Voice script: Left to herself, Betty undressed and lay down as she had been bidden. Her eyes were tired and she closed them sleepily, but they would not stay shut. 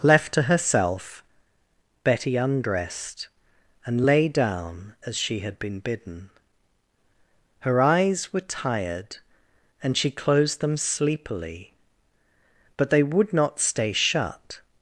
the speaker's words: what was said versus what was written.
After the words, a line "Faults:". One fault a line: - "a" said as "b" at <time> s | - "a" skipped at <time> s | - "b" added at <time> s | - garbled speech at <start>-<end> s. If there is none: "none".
Left to herself, Betty undressed and lay down as she had been bidden. Her eyes were tired and she closed them sleepily, but they would not stay shut.
Faults:
none